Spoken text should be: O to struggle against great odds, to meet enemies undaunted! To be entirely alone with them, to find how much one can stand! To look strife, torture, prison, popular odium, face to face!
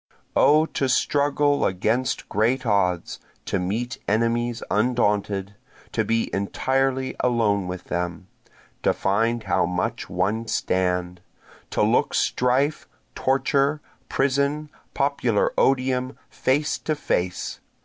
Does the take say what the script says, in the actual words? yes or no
no